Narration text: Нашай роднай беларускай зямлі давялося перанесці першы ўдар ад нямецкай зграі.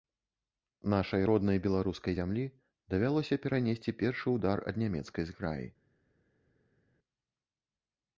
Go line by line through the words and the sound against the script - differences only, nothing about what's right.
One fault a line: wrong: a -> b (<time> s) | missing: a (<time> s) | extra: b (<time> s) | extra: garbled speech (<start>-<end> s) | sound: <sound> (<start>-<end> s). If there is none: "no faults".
no faults